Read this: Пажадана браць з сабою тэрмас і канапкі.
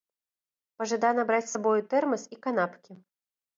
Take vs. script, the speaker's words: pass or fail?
pass